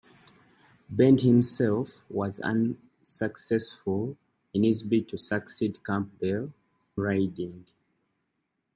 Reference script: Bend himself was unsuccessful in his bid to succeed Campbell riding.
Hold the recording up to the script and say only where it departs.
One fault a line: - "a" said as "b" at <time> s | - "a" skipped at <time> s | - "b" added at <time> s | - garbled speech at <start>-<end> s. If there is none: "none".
none